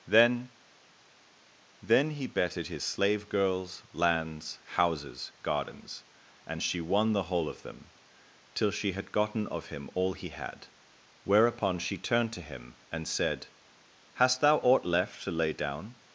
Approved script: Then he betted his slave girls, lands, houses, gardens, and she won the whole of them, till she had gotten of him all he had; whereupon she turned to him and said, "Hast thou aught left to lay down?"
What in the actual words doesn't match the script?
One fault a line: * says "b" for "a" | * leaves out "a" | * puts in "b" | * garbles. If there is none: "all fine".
* puts in "then"